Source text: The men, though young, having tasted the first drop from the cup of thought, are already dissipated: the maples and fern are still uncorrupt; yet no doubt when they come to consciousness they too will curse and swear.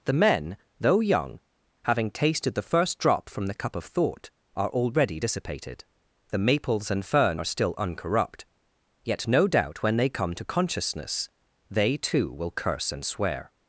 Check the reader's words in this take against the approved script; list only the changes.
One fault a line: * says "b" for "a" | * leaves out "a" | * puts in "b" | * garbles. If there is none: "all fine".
all fine